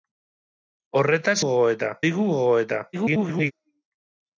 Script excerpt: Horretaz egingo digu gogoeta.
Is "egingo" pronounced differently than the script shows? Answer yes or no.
yes